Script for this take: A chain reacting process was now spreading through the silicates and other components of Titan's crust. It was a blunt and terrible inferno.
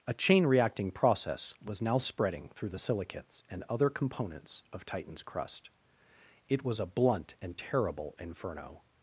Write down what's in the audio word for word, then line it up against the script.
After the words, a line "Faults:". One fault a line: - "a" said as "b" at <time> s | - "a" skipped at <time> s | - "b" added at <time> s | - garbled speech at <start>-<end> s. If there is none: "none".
A chain reacting process was now spreading through the silicates and other components of Titan's crust. It was a blunt and terrible inferno.
Faults:
none